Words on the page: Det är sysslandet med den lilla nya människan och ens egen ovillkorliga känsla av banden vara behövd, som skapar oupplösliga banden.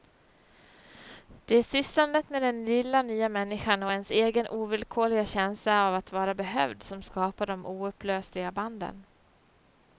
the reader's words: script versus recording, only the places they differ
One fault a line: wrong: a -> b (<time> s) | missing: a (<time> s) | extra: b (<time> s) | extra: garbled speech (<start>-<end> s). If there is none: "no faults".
wrong: banden -> att (5.9 s)
extra: de (7.5 s)